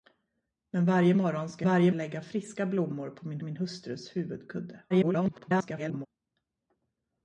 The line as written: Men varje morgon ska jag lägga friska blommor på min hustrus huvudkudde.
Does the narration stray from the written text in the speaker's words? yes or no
yes